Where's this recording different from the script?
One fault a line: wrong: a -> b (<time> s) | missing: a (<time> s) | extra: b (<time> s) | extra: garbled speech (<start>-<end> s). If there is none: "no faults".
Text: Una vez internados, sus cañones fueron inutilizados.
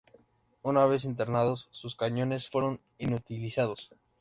no faults